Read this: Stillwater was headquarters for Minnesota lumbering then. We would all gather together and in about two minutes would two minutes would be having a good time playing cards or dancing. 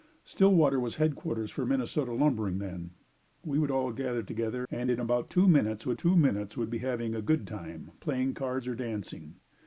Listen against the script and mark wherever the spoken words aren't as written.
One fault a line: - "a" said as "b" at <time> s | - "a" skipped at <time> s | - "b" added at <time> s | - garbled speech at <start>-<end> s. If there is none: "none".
none